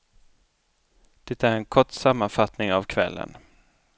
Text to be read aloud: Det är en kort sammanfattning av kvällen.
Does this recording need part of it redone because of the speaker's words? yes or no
no